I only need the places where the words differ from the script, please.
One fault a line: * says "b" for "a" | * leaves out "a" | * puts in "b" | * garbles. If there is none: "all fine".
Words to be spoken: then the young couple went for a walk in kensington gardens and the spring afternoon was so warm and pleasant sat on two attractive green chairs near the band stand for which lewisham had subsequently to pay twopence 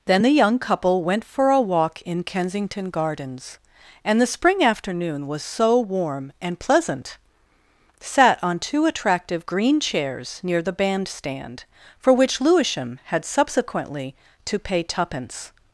all fine